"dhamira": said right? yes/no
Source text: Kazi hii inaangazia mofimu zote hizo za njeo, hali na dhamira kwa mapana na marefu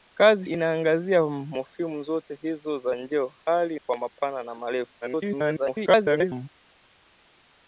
no